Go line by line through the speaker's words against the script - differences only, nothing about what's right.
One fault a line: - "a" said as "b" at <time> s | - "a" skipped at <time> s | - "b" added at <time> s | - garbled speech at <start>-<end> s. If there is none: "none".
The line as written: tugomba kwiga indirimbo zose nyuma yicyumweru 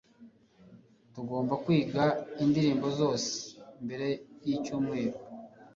- "nyuma" said as "mbere" at 3.8 s